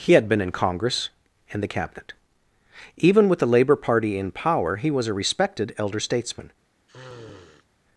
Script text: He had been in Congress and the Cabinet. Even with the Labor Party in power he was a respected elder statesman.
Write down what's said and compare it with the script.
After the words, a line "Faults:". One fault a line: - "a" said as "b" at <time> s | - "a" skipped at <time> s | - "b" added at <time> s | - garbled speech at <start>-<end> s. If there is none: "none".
He had been in Congress and the Cabinet. Even with the Labor Party in power he was a respected elder statesman.
Faults:
none